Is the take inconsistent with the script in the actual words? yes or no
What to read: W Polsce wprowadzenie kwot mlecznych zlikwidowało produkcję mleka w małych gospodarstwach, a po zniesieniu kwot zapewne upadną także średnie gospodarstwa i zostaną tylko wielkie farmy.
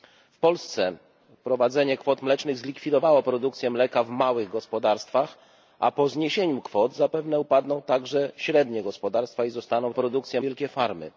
yes